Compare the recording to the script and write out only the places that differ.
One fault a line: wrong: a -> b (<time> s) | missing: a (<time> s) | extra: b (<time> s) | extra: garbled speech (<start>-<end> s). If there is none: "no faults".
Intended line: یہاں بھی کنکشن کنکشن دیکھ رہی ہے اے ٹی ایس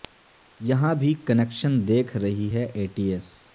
missing: کنکشن (1.8 s)